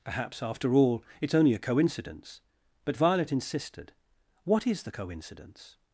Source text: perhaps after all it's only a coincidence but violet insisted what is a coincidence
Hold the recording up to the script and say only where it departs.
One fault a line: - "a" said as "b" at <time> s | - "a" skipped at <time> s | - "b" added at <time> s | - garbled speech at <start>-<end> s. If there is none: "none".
- "a" said as "the" at 4.8 s